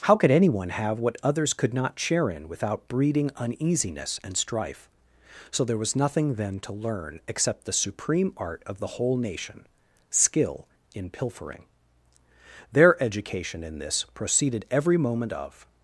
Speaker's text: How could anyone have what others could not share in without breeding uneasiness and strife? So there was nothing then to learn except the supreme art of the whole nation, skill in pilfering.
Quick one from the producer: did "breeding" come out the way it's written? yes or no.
yes